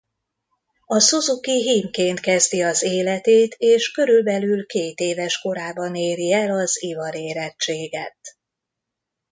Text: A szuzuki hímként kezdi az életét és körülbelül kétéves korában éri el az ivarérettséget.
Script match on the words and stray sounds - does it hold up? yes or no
yes